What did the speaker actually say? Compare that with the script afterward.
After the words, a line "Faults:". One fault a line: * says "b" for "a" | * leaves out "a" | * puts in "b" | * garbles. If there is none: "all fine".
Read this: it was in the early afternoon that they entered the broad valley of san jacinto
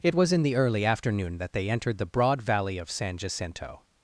it was in the early afternoon that they entered the broad valley of san jacinto
Faults:
all fine